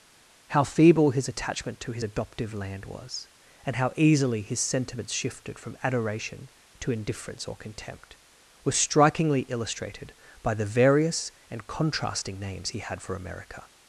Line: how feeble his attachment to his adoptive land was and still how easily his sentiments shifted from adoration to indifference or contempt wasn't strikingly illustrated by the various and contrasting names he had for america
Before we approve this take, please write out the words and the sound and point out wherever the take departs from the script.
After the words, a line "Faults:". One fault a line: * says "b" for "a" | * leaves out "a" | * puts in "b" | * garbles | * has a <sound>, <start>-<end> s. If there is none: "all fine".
how feeble his attachment to his adoptive land was and how easily his sentiments shifted from adoration to indifference or contempt was strikingly illustrated by the various and contrasting names he had for america
Faults:
* leaves out "still"
* says "was" for "wasn't"